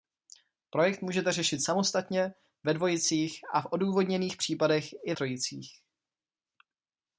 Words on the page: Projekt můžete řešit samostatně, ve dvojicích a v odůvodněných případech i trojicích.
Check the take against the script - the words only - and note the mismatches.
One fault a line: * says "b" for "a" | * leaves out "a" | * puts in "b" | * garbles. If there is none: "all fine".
all fine